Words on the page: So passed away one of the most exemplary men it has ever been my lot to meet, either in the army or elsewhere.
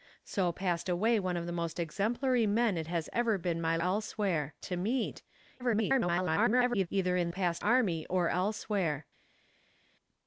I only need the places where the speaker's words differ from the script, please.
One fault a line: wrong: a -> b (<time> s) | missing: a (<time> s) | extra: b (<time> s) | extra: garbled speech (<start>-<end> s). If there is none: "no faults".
wrong: lot -> elsewhere (3.8 s)
extra: garbled speech (5.6-6.9 s)
wrong: the -> passed (7.3 s)